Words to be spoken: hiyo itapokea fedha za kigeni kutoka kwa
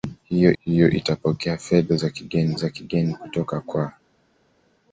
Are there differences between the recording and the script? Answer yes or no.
yes